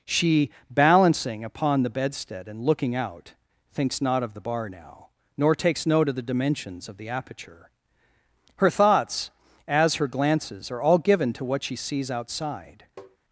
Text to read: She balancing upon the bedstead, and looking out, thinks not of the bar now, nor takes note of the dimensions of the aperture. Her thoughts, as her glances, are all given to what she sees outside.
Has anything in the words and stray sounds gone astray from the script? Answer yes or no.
yes